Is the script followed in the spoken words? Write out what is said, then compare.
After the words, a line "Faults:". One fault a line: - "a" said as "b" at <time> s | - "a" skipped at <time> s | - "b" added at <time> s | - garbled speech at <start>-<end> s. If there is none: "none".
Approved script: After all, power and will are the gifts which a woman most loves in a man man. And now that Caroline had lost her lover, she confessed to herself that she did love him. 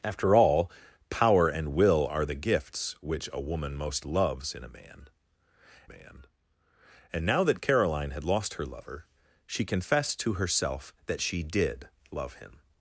After all, power and will are the gifts which a woman most loves in a man man. And now that Caroline had lost her lover, she confessed to herself that she did love him.
Faults:
none